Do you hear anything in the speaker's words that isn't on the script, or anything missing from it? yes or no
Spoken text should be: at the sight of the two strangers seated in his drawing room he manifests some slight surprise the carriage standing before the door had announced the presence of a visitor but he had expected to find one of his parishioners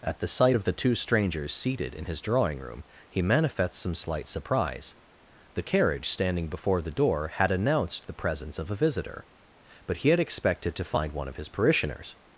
no